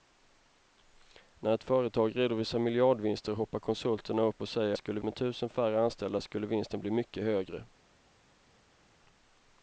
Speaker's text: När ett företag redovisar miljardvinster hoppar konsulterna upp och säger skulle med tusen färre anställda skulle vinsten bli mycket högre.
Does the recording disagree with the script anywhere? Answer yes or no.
no